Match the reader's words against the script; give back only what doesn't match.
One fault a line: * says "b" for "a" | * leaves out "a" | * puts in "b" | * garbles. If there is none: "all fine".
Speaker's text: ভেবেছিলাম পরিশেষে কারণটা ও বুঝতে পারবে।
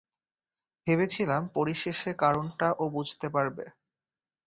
all fine